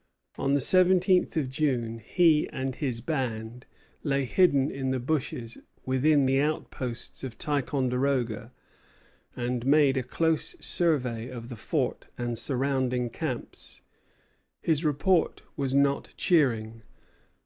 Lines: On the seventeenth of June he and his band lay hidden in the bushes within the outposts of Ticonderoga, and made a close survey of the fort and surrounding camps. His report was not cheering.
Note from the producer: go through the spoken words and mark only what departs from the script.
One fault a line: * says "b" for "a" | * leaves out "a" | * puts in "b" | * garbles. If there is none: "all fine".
all fine